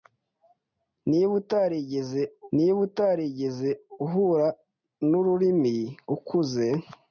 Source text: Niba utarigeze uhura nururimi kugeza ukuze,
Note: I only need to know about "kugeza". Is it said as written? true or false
false